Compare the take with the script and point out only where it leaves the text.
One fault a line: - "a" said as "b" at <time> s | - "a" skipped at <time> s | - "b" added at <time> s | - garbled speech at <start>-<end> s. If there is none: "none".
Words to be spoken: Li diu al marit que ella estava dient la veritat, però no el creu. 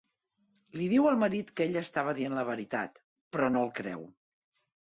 none